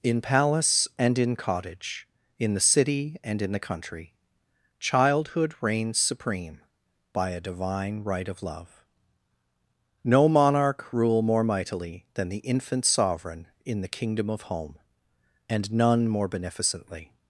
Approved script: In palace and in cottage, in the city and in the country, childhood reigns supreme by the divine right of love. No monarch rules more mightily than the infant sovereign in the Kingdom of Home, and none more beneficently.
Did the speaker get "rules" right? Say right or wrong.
wrong